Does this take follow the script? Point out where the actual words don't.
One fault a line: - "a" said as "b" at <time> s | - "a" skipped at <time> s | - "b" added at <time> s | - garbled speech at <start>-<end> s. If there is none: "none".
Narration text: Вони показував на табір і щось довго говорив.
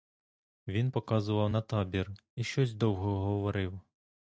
- "Вони" said as "Він" at 0.7 s